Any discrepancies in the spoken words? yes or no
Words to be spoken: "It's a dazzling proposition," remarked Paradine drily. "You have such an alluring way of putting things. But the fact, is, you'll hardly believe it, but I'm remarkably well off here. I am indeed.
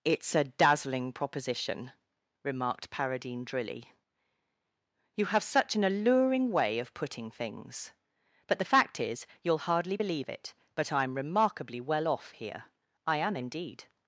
no